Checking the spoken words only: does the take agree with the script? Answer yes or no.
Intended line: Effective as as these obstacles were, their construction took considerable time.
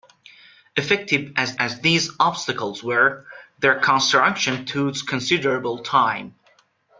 yes